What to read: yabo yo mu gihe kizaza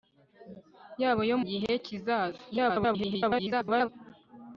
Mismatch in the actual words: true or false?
true